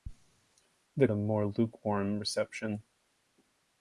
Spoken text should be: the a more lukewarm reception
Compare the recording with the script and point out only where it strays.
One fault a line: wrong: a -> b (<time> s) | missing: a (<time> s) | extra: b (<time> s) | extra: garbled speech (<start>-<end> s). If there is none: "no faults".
no faults